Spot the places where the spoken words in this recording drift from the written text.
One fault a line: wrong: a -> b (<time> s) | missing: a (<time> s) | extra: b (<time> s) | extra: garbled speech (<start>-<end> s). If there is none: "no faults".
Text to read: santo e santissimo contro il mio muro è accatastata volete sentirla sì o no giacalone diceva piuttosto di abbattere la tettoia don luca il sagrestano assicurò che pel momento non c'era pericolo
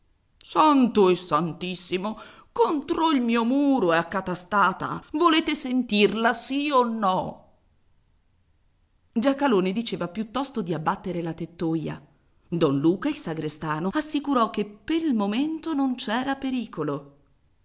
no faults